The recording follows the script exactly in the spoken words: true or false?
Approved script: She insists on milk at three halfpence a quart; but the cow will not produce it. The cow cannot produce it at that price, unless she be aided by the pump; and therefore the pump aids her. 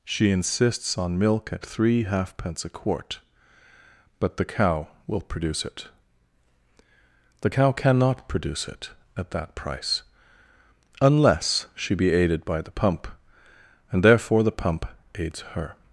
false